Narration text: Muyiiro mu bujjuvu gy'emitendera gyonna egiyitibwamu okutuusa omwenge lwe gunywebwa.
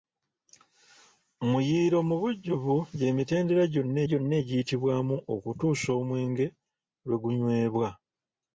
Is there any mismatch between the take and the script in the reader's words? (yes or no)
yes